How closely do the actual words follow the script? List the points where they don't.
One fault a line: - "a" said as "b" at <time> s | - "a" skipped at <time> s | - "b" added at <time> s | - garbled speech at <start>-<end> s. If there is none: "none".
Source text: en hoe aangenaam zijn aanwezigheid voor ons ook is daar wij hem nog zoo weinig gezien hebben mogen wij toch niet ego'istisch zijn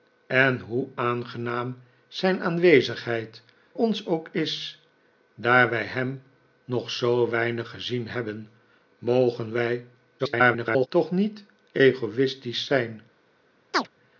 - "voor" skipped at 3.4 s
- garbled speech at 10.2-10.9 s